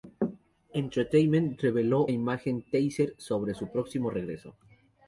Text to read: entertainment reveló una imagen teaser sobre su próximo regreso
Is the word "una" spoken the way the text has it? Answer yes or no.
no